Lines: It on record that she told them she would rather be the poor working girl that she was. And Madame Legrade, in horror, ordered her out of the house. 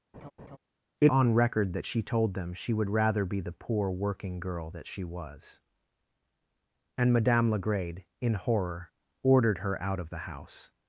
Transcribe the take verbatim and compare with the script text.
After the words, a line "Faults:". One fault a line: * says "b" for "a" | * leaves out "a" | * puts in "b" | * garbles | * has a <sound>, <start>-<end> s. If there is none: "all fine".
It on record that she told them she would rather be the poor working girl that she was. And Madame Legrade, in horror, ordered her out of the house.
Faults:
* has a laugh, 0.1-0.6 s